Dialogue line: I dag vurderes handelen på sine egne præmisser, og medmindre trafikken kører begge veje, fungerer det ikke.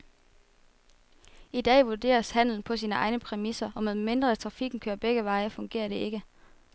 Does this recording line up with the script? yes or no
yes